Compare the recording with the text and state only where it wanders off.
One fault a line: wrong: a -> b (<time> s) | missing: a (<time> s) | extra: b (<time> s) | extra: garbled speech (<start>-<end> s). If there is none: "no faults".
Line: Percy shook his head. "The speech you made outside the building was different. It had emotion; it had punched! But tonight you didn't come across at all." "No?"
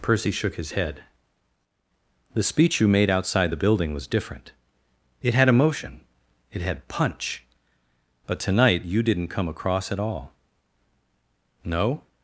wrong: punched -> punch (6.9 s)